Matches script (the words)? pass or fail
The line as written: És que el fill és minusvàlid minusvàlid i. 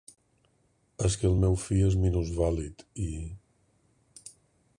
fail